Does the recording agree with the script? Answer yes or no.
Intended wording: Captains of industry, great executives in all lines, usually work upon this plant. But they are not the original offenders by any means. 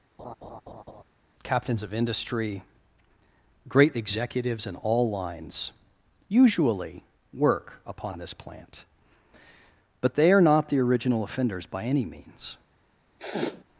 yes